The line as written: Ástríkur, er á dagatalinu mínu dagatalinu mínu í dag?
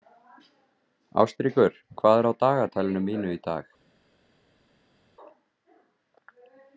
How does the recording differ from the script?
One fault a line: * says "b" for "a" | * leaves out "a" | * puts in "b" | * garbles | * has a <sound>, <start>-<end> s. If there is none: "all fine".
* puts in "hvað"
* leaves out "dagatalinu mínu"